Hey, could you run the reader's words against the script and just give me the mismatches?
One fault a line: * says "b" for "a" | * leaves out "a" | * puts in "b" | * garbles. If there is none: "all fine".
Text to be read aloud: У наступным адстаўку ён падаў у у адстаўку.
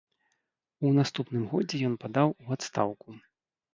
* says "годзе" for "адстаўку"
* leaves out "у"